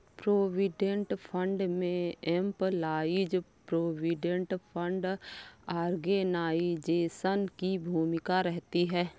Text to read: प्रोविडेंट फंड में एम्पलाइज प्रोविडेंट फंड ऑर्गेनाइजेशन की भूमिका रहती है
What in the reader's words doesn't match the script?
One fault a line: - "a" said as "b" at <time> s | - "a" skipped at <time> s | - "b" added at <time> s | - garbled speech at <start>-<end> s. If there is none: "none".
none